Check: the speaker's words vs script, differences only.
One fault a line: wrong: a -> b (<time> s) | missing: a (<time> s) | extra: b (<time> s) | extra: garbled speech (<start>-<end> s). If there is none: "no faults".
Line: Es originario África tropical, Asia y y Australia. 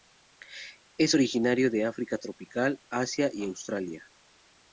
extra: de (1.7 s)
missing: y (3.4 s)